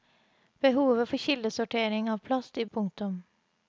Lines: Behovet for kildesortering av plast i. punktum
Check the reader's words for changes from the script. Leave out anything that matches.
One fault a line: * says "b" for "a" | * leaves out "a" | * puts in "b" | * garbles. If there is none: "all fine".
all fine